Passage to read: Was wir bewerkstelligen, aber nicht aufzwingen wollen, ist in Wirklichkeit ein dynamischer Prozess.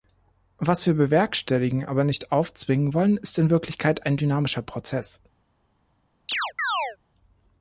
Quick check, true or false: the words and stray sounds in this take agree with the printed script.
false